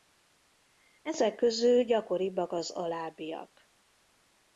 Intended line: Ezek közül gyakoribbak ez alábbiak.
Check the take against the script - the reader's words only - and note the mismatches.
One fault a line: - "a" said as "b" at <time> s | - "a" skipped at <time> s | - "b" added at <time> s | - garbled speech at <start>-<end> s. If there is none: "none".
- "ez" said as "az" at 2.5 s